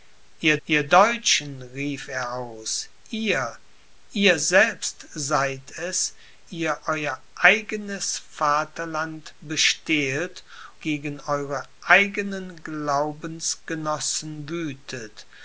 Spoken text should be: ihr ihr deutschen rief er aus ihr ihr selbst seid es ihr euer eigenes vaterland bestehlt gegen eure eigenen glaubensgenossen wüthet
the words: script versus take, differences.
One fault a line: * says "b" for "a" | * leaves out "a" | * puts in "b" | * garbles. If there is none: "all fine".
all fine